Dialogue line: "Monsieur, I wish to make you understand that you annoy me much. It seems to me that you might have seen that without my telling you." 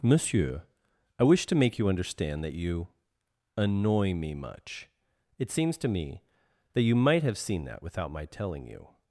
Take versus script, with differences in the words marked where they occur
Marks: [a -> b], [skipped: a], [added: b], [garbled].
"Monsieur, I wish to make you understand that you annoy me much. It seems to me that you might have seen that without my telling you."